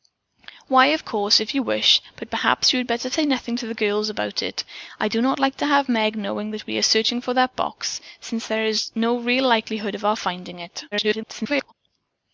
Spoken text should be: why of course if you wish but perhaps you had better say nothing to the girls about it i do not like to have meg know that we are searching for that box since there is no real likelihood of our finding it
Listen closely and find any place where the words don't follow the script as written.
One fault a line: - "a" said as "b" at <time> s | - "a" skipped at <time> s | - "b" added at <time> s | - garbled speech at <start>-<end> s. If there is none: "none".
- garbled speech at 10.9-11.7 s